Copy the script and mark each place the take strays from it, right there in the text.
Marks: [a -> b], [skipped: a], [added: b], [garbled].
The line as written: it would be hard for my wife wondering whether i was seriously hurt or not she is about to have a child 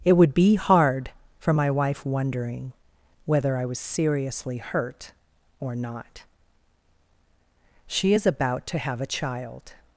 it would be hard for my wife wondering whether i was seriously hurt or not she is about to have a child